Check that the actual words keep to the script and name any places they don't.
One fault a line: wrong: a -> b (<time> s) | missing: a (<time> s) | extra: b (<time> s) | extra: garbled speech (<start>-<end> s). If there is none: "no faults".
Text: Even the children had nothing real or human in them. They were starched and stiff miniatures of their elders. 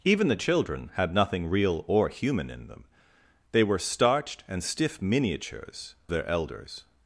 missing: of (6.0 s)